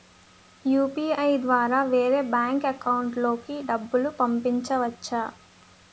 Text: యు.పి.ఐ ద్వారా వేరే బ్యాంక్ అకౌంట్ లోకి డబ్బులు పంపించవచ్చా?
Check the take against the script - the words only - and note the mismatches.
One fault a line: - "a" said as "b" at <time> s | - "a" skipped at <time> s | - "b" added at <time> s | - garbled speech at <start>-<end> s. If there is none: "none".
none